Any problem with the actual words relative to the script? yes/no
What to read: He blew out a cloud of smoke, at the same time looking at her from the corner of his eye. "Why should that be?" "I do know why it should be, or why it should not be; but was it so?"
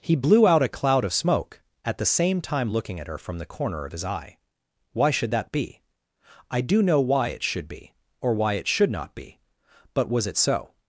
no